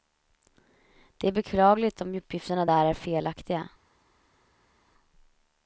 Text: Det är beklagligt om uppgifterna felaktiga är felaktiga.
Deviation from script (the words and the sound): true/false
true